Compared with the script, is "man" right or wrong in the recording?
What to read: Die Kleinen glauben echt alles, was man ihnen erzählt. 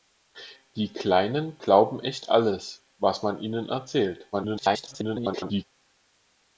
right